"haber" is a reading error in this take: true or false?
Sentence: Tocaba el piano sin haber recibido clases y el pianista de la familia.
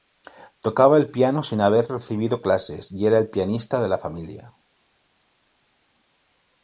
false